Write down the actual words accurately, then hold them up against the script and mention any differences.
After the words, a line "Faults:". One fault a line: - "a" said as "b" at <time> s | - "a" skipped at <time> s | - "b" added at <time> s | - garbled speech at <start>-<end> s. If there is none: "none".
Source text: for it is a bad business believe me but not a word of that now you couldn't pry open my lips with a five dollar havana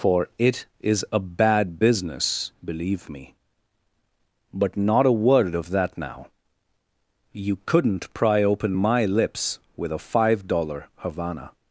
for it is a bad business believe me but not a word of that now you couldn't pry open my lips with a five dollar havana
Faults:
none